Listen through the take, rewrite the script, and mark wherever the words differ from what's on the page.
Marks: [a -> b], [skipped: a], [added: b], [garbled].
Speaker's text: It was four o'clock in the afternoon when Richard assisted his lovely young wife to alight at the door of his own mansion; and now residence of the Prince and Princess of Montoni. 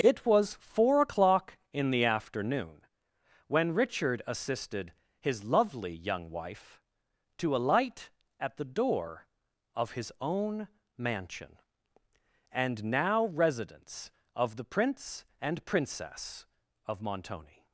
It was four o'clock in the afternoon when Richard assisted his lovely young wife to alight at the door of his own mansion; and now residence of the Prince and Princess of Montoni.